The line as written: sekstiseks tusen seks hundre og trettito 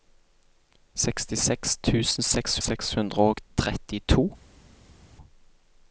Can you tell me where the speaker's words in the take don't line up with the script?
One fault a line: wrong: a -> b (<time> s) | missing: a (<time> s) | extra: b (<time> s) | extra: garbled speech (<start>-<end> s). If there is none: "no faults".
extra: seks (2.6 s)